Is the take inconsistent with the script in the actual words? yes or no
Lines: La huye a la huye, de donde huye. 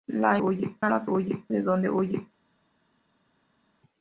no